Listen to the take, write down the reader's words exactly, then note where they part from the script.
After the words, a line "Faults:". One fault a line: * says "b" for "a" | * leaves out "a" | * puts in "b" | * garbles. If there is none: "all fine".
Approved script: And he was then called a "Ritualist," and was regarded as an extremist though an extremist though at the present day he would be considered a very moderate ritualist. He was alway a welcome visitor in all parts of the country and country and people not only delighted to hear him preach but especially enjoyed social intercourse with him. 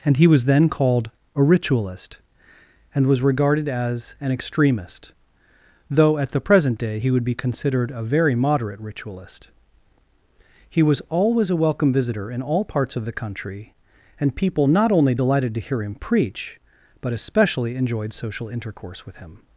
And he was then called a "Ritualist," and was regarded as an extremist though at the present day he would be considered a very moderate ritualist. He was always a welcome visitor in all parts of the country and people not only delighted to hear him preach but especially enjoyed social intercourse with him.
Faults:
* leaves out "an extremist though"
* says "always" for "alway"
* leaves out "country and"